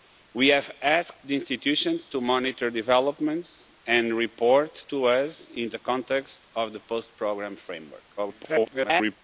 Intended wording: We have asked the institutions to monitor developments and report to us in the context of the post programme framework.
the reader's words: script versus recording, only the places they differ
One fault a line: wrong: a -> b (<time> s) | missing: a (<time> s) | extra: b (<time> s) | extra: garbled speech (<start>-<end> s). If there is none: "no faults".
extra: garbled speech (8.2-9.2 s)